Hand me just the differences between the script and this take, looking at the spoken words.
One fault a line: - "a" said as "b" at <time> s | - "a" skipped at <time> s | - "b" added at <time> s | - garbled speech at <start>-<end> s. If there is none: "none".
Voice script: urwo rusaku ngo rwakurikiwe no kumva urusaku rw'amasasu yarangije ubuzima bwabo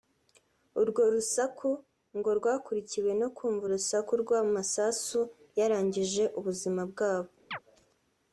none